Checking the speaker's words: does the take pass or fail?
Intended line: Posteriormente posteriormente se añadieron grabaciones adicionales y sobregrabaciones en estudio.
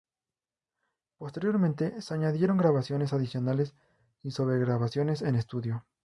fail